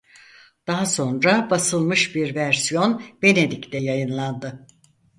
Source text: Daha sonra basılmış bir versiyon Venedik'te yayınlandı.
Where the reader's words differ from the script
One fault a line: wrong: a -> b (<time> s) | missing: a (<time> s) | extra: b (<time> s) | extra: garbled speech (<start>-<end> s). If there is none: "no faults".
no faults